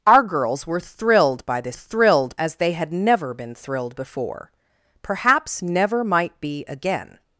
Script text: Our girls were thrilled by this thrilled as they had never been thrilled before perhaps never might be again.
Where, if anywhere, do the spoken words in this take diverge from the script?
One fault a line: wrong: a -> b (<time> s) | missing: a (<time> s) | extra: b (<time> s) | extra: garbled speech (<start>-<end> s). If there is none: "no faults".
no faults